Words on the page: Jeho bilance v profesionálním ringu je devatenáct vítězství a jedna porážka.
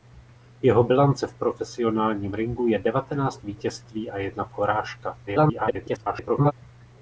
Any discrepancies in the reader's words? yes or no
yes